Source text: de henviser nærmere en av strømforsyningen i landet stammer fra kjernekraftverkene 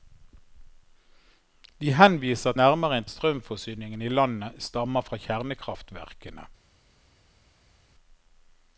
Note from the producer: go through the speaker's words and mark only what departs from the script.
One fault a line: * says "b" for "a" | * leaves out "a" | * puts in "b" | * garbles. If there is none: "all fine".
all fine